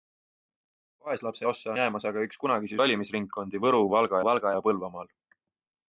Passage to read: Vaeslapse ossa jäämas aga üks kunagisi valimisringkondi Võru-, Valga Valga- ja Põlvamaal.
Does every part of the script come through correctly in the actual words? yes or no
yes